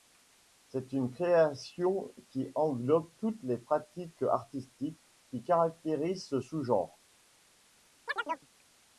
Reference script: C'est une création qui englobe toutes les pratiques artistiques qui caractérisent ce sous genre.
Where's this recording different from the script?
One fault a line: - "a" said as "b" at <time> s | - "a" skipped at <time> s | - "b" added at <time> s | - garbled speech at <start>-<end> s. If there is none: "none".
none